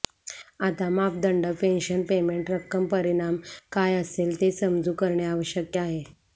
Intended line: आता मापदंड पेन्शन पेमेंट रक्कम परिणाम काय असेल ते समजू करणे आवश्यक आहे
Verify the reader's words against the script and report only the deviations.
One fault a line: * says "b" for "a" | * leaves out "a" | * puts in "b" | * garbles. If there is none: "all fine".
all fine